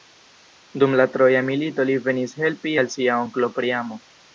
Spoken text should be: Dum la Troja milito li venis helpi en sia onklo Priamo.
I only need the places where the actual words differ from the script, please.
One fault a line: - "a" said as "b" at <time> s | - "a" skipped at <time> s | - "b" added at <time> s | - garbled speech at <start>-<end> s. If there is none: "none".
- "en" said as "al" at 2.8 s